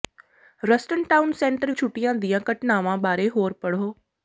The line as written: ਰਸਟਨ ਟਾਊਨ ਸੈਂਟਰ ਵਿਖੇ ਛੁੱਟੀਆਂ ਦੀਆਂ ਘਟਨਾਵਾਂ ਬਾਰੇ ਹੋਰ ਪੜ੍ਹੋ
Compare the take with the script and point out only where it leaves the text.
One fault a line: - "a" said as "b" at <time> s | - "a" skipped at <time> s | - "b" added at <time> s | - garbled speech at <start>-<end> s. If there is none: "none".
- "ਵਿਖੇ" skipped at 1.7 s